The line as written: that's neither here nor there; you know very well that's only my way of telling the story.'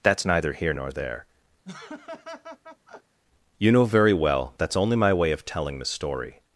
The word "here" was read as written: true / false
true